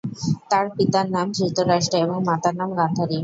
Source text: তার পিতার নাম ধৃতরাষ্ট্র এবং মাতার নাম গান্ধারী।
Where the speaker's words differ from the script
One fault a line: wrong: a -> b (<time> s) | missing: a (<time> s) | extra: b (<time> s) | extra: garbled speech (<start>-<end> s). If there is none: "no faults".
no faults